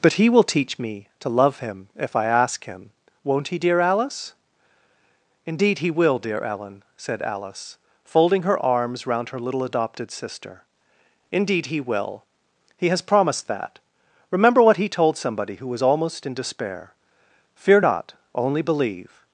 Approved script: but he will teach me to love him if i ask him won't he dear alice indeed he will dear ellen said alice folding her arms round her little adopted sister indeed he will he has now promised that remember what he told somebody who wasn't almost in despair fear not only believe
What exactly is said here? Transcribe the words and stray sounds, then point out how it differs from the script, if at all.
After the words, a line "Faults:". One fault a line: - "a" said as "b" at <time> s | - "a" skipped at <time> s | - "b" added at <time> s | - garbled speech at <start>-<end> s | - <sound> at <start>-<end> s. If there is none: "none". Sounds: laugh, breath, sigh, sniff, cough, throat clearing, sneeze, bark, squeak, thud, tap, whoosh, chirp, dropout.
but he will teach me to love him if i ask him won't he dear alice indeed he will dear ellen said alice folding her arms round her little adopted sister indeed he will he has promised that remember what he told somebody who was almost in despair fear not only believe
Faults:
- "now" skipped at 13.0 s
- "wasn't" said as "was" at 15.7 s